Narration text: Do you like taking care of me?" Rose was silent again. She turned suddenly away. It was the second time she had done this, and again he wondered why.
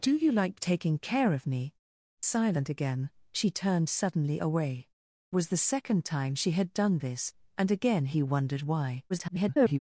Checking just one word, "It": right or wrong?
wrong